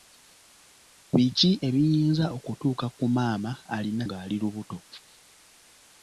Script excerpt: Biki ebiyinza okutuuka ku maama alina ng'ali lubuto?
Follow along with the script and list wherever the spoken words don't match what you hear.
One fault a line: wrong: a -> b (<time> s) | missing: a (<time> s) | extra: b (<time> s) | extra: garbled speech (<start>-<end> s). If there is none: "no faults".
no faults